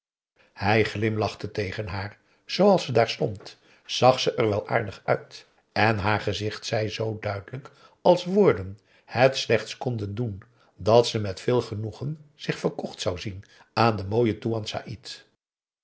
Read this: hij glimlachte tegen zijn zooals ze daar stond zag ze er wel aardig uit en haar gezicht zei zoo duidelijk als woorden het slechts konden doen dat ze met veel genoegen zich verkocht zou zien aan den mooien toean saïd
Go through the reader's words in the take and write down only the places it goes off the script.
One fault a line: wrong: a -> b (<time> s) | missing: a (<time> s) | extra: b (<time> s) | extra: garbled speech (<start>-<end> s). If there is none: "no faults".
wrong: zijn -> haar (1.9 s)